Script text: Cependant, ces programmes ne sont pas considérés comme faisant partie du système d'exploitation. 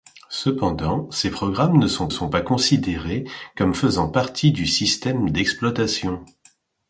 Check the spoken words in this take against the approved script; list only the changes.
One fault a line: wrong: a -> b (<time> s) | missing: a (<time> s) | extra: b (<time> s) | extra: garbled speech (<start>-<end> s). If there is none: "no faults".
extra: sont (2.1 s)